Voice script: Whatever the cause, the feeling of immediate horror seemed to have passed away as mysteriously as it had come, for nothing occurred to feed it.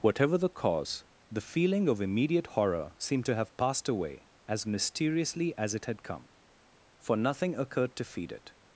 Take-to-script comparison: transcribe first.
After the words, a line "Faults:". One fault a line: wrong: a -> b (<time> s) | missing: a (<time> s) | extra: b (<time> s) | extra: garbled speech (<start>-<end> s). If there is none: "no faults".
Whatever the cause, the feeling of immediate horror seemed to have passed away as mysteriously as it had come, for nothing occurred to feed it.
Faults:
no faults